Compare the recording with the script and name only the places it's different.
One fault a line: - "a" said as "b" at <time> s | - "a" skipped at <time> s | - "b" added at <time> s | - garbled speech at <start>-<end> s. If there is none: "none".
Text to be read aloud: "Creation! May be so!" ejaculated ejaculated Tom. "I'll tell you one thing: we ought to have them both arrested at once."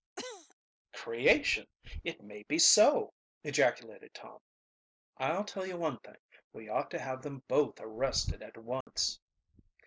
- "It" added at 2.0 s
- "ejaculated" skipped at 4.1 s